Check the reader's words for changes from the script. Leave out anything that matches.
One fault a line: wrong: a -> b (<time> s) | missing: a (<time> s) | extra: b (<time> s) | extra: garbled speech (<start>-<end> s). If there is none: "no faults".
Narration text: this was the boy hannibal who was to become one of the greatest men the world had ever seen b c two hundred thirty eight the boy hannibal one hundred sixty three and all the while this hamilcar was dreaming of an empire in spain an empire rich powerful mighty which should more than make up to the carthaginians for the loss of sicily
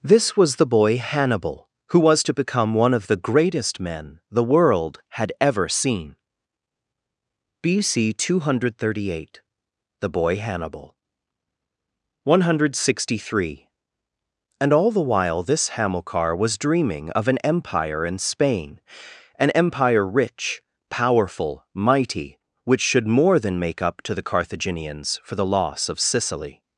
no faults